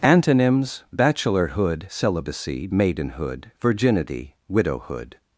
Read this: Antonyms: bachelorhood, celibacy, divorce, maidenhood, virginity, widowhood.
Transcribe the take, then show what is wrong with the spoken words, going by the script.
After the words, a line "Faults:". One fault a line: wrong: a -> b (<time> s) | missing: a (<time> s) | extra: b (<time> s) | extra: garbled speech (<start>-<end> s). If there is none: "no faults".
Antonyms: bachelorhood, celibacy, maidenhood, virginity, widowhood.
Faults:
missing: divorce (2.7 s)